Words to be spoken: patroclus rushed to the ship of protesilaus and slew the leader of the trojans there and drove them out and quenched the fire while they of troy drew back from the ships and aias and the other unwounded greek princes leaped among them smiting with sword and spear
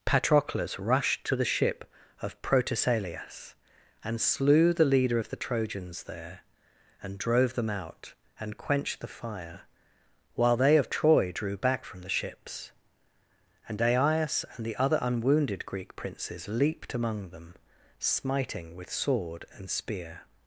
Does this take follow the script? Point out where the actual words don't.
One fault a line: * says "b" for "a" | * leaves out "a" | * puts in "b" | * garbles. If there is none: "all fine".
all fine